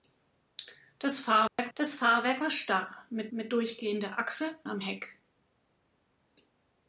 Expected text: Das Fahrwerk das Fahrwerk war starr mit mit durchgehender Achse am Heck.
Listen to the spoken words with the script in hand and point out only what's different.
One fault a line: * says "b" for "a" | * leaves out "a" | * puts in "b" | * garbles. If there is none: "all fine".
all fine